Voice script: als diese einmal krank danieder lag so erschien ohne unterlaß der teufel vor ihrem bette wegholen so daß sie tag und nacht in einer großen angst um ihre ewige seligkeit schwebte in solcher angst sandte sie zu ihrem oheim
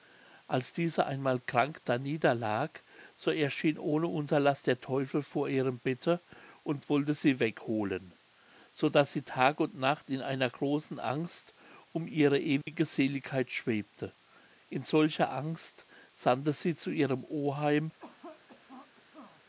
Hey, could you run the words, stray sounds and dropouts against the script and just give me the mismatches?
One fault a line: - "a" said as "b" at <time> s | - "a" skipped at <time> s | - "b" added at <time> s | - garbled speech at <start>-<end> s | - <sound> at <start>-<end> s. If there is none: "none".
- "und wollte sie" added at 6.6 s
- dropout at 12.6-12.7 s
- cough at 18.0-19.4 s